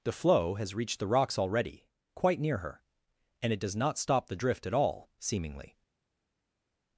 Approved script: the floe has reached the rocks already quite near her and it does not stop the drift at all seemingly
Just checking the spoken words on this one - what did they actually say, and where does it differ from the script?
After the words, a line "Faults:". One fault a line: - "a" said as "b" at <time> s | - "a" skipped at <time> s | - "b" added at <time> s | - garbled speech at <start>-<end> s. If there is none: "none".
the floe has reached the rocks already quite near her and it does not stop the drift at all seemingly
Faults:
none